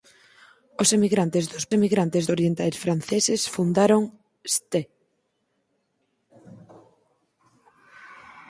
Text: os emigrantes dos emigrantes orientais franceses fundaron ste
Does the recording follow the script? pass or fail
pass